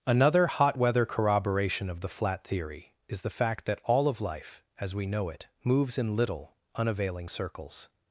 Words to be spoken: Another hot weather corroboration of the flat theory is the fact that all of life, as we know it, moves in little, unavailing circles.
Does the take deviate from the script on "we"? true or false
false